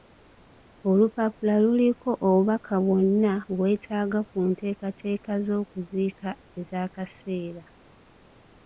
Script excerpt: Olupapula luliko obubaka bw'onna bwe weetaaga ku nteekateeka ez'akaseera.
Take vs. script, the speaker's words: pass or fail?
fail